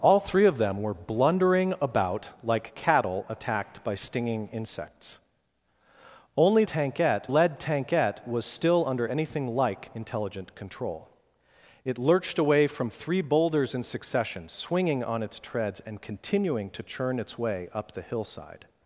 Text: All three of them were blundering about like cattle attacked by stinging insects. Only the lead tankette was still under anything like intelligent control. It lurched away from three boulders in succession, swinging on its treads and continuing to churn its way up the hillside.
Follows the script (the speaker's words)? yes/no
no